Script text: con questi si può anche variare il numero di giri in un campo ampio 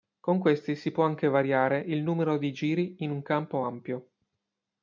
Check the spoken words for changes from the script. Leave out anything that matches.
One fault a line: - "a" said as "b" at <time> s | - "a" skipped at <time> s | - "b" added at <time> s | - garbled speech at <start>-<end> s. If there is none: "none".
none